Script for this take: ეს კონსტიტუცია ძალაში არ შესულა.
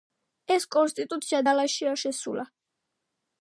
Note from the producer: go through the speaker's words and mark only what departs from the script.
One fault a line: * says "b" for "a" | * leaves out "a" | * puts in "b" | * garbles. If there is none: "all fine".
all fine